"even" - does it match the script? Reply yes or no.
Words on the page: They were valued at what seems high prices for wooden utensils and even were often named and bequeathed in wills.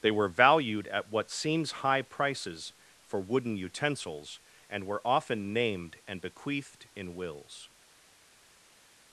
no